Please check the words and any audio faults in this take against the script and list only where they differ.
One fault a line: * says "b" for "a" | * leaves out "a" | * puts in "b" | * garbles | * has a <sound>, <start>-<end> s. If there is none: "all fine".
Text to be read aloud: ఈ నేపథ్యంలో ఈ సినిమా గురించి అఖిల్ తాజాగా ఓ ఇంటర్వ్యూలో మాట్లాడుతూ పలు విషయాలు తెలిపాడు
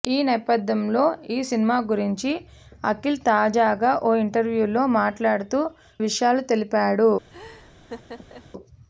* leaves out "పలు"
* has a laugh, 7.3-8.5 s